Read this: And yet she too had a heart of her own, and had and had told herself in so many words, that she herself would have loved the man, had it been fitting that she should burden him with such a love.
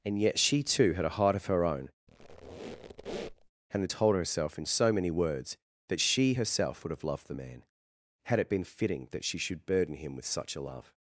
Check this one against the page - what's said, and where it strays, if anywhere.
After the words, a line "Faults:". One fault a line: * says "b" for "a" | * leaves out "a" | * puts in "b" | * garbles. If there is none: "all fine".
And yet she too had a heart of her own, and had told herself in so many words, that she herself would have loved the man, had it been fitting that she should burden him with such a love.
Faults:
* leaves out "and had"